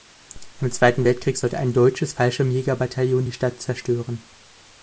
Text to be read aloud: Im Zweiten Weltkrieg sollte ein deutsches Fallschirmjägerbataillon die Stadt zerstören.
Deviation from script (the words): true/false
false